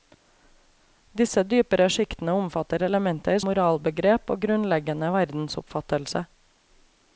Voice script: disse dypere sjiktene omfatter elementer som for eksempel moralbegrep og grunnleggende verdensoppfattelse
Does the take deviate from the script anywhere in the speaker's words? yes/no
yes